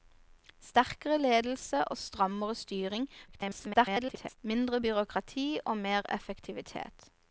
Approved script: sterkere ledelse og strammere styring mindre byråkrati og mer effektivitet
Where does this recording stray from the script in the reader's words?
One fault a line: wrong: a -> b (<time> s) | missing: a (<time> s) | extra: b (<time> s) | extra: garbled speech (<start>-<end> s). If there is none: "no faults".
extra: garbled speech (3.3-4.4 s)